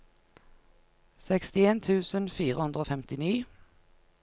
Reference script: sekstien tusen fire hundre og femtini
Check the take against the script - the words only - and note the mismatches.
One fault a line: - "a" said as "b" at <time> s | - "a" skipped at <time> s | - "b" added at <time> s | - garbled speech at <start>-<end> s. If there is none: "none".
none